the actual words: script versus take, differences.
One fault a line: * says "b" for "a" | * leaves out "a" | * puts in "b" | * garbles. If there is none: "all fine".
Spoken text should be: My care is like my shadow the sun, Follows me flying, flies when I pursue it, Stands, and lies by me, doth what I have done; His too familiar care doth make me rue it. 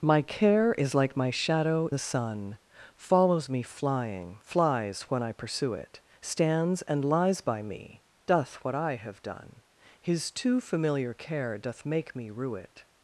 all fine